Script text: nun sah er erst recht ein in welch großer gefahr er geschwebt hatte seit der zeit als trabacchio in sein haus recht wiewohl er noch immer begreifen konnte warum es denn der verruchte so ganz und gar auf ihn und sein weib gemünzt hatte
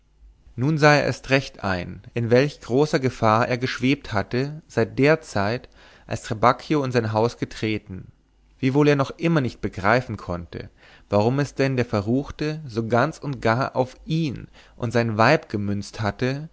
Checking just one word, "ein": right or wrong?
right